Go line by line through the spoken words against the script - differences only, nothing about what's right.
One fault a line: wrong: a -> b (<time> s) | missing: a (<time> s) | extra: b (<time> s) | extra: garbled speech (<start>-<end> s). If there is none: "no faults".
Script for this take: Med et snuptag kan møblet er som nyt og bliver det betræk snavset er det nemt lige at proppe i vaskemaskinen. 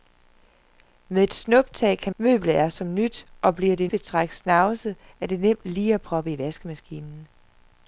no faults